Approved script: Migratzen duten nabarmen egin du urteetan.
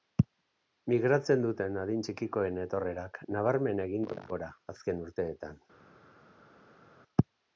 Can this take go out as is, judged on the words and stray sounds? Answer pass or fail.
fail